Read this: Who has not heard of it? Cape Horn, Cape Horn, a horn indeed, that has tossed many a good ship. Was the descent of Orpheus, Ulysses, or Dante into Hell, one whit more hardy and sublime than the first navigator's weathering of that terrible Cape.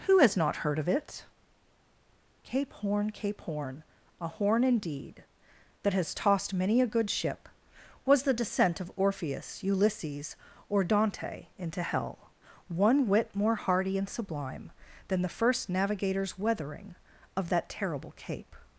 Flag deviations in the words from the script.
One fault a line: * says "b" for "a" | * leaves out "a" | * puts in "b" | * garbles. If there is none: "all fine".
all fine